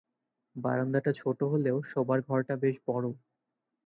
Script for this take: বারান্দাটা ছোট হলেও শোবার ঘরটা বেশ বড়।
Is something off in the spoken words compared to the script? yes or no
no